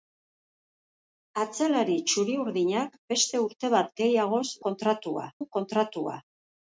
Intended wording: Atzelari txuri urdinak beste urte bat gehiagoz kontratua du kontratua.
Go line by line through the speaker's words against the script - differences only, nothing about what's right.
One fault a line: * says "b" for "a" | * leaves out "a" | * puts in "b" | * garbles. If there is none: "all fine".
all fine